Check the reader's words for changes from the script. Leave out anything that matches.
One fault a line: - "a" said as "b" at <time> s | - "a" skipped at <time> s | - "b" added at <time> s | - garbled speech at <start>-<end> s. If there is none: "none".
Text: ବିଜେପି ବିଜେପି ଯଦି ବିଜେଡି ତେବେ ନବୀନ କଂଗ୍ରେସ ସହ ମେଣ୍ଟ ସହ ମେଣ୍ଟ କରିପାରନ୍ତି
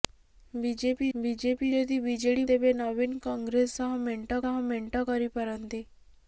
none